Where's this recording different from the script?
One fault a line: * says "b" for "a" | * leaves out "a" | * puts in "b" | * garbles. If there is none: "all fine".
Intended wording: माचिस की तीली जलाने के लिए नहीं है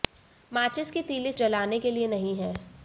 all fine